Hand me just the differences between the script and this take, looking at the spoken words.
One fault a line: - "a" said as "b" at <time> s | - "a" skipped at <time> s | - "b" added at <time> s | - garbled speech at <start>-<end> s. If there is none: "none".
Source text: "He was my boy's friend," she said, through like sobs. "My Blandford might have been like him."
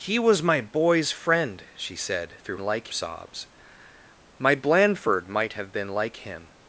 none